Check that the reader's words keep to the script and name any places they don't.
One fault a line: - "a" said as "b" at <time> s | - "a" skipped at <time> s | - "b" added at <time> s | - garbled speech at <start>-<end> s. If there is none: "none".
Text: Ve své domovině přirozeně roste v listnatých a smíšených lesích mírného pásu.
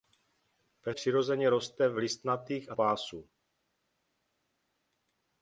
- "své domovině" skipped at 0.9 s
- "smíšených lesích mírného" skipped at 2.7 s